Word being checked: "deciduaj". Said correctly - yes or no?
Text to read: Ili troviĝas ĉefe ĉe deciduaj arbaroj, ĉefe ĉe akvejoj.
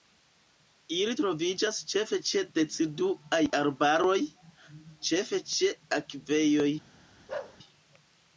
yes